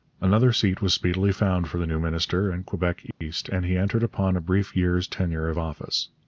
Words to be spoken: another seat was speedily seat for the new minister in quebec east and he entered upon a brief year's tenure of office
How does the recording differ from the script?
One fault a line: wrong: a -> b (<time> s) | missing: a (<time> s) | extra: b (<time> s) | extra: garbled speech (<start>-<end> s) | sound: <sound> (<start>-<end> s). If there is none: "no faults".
wrong: seat -> found (1.3 s)
sound: dropout (3.1-3.2 s)